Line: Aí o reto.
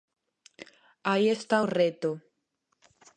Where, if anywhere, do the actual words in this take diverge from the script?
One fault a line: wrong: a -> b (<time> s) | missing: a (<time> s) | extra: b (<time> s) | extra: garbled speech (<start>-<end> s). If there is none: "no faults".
extra: está (1.3 s)